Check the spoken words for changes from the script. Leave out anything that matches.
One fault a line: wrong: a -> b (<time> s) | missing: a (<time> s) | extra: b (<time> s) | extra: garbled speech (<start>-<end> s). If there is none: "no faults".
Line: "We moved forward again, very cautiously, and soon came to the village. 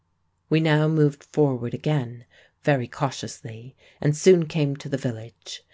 extra: now (0.6 s)